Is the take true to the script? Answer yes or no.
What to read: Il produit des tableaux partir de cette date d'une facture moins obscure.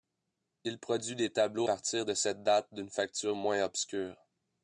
yes